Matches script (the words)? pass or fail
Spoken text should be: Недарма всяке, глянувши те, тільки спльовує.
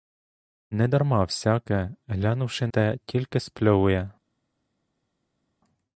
pass